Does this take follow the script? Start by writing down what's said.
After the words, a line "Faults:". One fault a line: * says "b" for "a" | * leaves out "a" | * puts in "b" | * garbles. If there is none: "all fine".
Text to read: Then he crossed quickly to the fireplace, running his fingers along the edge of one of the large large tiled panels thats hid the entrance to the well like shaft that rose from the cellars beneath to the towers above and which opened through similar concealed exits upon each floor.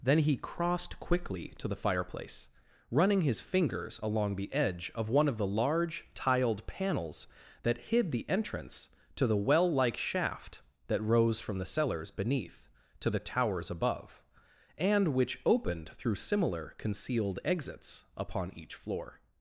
Then he crossed quickly to the fireplace, running his fingers along the edge of one of the large tiled panels that hid the entrance to the well like shaft that rose from the cellars beneath to the towers above and which opened through similar concealed exits upon each floor.
Faults:
* leaves out "large"
* says "that" for "thats"